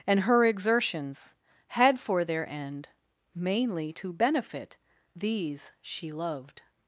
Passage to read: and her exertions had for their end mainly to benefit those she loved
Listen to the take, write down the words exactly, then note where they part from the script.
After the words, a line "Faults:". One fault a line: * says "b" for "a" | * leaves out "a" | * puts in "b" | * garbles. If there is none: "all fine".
and her exertions had for their end mainly to benefit these she loved
Faults:
* says "these" for "those"